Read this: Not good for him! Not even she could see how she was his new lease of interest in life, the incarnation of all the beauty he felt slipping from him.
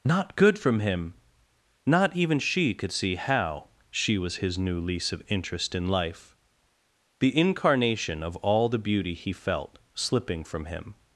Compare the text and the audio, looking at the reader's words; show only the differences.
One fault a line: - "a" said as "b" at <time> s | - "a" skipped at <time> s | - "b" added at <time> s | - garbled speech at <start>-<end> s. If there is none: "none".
- "for" said as "from" at 0.6 s